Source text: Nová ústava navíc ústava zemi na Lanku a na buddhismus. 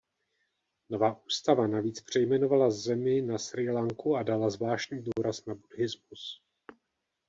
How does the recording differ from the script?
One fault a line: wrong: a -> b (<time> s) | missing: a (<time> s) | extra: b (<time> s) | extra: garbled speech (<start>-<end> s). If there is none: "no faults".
wrong: ústava -> přejmenovala (2.0 s)
extra: Srí (3.4 s)
extra: dala zvláštní důraz (4.2 s)